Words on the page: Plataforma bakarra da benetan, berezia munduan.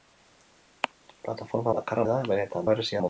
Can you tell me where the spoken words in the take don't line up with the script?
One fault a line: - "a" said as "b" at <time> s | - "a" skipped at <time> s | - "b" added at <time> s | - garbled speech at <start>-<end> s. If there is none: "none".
none